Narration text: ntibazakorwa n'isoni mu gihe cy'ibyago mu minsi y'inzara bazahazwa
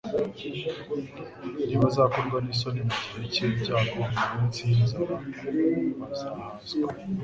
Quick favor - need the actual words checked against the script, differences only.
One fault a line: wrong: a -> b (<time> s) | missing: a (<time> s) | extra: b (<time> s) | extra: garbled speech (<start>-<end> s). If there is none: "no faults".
no faults